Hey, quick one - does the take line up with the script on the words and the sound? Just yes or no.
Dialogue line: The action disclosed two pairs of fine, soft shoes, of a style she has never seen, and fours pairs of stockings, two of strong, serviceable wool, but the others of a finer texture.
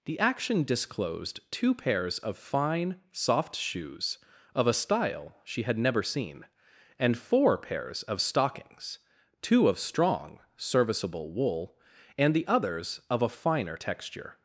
no